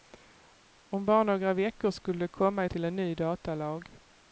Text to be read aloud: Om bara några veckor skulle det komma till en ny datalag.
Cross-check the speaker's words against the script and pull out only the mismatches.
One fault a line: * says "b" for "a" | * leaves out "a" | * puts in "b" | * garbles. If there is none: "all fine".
all fine